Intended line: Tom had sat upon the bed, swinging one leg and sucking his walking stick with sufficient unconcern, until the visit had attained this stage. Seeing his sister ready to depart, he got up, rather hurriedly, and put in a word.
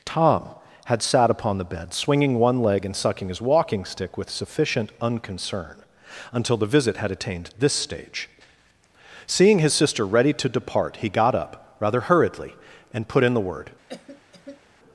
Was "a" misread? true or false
true